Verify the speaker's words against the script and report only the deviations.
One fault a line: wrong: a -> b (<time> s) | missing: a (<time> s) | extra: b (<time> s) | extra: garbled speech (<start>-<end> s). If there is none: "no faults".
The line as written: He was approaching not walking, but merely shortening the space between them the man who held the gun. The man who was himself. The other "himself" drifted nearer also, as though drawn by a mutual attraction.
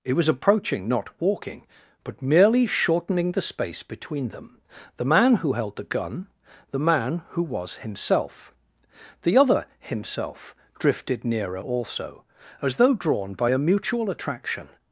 wrong: He -> It (0.0 s)